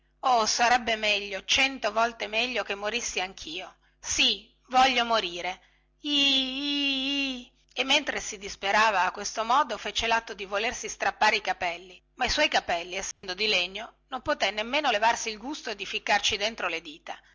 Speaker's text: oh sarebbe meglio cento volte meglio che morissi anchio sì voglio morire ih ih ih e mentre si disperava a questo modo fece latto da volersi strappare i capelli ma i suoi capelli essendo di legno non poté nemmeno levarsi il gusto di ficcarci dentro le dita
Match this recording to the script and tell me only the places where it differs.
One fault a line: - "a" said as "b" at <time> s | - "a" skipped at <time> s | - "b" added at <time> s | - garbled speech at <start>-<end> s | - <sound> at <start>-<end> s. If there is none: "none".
- "da" said as "di" at 10.3 s
- dropout at 13.1-13.2 s